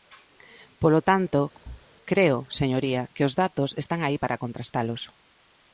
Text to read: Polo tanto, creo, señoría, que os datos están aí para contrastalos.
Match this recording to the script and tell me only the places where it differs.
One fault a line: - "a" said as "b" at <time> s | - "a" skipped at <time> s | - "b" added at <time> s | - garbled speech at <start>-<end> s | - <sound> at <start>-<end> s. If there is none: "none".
- thud at 1.5-1.9 s